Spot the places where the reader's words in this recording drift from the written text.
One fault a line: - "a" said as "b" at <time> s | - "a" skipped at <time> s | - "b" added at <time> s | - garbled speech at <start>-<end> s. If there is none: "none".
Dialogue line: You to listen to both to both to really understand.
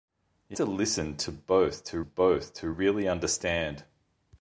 none